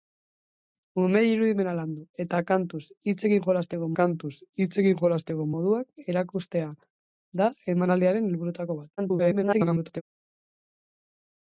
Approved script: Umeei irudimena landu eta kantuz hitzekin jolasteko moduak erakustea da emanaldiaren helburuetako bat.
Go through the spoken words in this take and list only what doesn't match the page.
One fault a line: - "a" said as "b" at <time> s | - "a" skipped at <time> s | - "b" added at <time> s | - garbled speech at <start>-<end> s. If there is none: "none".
- "kantuz hitzekin jolasteko" added at 4.0 s
- garbled speech at 9.0-10.0 s